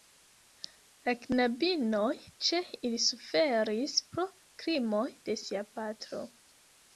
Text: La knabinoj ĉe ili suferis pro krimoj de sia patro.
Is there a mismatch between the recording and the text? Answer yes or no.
no